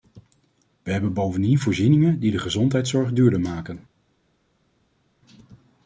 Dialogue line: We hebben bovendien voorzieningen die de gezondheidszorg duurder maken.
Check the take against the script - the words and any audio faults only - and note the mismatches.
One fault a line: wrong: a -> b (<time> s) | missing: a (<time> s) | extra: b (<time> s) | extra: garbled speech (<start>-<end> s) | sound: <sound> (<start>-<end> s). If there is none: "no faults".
no faults